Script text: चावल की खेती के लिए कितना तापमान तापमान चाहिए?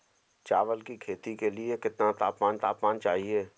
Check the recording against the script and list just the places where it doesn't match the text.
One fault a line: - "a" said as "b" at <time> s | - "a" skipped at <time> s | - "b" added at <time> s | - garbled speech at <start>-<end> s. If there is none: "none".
none